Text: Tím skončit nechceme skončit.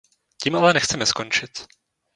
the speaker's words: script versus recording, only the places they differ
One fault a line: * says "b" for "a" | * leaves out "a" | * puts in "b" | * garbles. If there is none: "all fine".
* says "ale" for "skončit"